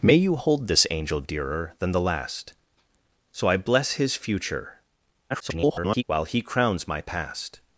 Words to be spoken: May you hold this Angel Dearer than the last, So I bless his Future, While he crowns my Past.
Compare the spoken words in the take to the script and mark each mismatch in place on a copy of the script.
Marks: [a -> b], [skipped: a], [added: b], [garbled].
May you hold this Angel Dearer than the last, So I bless his Future, [garbled] While he crowns my Past.